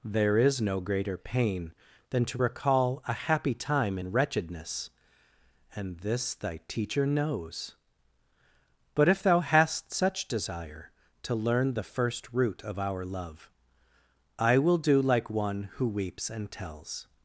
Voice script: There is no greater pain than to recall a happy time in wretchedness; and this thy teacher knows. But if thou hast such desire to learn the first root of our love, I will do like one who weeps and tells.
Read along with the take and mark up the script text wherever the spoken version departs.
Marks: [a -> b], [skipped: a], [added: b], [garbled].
There is no greater pain than to recall a happy time in wretchedness; and this thy teacher knows. But if thou hast such desire to learn the first root of our love, I will do like one who weeps and tells.